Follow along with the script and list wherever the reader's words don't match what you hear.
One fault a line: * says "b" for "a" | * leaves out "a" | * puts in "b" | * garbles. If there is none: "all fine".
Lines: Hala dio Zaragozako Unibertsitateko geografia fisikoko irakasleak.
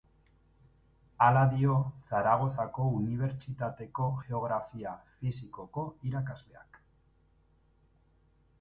all fine